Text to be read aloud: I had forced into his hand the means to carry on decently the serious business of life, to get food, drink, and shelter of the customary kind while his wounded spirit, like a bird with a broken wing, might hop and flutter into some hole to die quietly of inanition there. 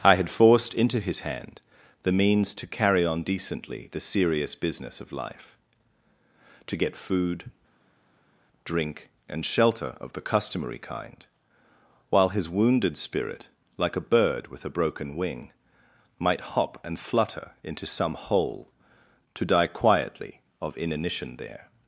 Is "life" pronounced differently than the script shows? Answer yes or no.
no